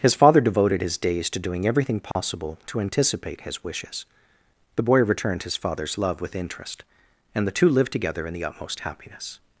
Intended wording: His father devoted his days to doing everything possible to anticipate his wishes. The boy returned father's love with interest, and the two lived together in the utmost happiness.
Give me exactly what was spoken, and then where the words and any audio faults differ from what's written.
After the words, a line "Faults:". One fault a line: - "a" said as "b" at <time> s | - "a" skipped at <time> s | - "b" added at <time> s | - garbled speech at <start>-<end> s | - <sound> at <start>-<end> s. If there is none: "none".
His father devoted his days to doing everything possible to anticipate his wishes. The boy returned his father's love with interest, and the two lived together in the utmost happiness.
Faults:
- dropout at 2.1-2.2 s
- "his" added at 5.4 s